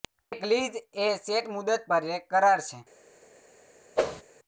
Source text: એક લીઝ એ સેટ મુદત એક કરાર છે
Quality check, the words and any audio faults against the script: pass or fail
fail